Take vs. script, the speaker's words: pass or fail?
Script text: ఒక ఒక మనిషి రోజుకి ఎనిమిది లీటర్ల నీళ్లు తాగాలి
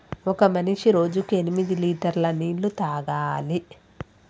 fail